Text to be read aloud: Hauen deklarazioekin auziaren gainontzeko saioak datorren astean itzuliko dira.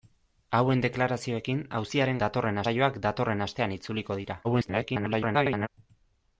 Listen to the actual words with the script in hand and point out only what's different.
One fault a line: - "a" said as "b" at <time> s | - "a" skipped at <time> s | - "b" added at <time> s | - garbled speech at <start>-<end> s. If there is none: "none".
- "gainontzeko" said as "datorren" at 2.2 s
- garbled speech at 4.4-5.7 s